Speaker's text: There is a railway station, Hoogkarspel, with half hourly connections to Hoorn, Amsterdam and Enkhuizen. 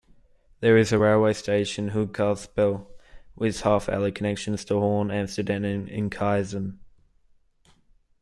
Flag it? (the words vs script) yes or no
no